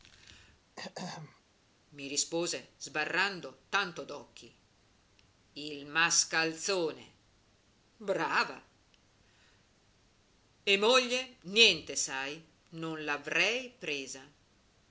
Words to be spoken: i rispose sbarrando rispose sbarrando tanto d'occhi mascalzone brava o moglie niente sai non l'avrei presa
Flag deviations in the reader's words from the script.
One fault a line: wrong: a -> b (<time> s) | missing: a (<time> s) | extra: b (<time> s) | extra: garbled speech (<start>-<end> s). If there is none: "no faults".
missing: rispose sbarrando (3.6 s)
extra: il (5.5 s)
wrong: o -> e (10.6 s)